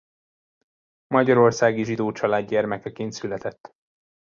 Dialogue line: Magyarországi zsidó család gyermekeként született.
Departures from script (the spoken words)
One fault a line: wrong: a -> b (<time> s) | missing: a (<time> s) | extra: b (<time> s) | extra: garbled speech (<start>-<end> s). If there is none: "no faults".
no faults